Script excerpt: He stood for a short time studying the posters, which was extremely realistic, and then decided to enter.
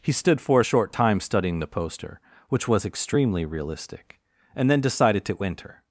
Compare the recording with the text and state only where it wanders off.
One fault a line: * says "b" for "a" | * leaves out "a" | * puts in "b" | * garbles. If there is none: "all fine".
* says "poster" for "posters"